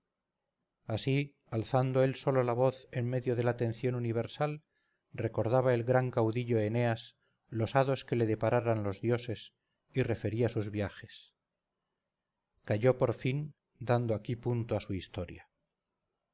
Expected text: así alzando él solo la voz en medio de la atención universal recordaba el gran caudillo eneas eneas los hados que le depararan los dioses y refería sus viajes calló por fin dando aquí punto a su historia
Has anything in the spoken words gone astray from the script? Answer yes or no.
yes